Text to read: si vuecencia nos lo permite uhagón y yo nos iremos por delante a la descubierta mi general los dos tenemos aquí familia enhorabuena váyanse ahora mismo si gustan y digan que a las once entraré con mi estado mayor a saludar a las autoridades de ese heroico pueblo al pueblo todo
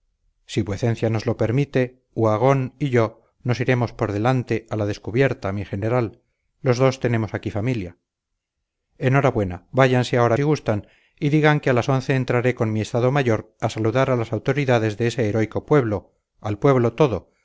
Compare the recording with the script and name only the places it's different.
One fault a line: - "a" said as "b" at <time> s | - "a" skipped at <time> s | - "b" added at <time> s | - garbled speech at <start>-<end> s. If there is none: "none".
- "mismo" skipped at 10.4 s